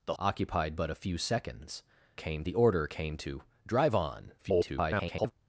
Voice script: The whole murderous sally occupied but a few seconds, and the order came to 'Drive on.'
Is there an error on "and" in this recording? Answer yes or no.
yes